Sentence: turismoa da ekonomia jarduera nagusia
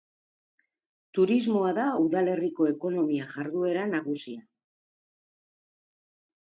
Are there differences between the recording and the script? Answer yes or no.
yes